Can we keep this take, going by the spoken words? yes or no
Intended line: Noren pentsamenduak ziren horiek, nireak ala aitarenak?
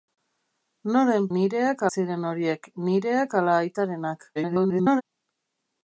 no